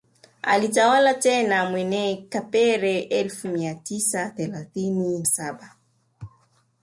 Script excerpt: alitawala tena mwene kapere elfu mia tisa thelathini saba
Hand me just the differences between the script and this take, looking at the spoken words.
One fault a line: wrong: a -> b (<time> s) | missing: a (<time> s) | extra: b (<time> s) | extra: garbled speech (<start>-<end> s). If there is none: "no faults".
no faults